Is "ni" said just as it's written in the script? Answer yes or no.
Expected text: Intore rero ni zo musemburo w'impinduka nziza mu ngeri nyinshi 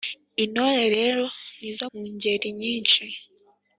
yes